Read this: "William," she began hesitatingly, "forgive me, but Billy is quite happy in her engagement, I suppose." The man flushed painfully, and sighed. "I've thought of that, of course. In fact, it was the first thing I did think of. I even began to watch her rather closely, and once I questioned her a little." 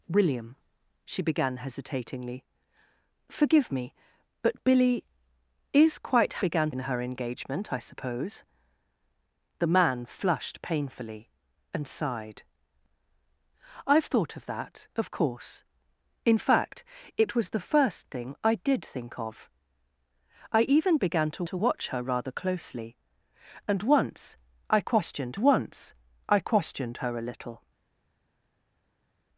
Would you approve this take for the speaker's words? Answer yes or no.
no